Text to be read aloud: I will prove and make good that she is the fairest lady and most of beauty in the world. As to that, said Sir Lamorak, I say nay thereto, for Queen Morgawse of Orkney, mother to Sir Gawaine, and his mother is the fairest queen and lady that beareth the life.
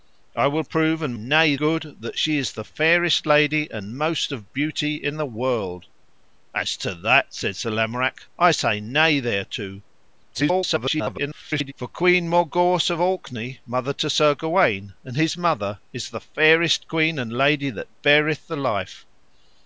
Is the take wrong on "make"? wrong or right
wrong